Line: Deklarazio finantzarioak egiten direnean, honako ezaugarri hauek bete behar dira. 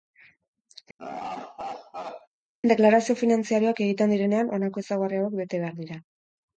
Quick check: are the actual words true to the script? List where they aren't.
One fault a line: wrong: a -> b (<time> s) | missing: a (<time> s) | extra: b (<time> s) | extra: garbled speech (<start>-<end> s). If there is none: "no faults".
no faults